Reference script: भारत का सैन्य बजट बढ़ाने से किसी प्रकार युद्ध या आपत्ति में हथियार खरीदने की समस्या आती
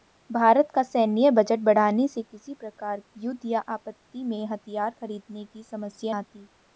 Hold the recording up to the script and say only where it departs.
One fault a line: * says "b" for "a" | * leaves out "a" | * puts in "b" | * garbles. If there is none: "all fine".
all fine